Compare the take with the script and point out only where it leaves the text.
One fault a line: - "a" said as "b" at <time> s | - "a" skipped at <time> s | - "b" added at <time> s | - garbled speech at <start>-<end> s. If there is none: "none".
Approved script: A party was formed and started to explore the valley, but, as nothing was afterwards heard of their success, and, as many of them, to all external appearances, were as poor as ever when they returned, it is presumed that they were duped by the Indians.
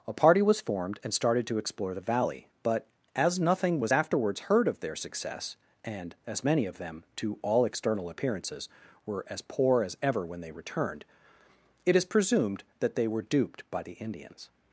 none